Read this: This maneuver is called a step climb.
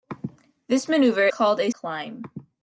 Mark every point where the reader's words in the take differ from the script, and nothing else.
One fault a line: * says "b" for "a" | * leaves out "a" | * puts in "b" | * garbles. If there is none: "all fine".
* leaves out "is"
* leaves out "step"